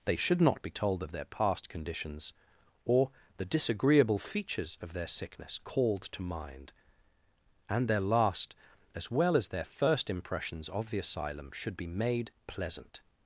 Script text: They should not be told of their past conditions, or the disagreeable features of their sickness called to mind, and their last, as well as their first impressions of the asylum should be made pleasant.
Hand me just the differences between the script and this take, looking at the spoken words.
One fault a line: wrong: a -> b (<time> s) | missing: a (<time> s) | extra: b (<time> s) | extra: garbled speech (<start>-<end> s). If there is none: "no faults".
no faults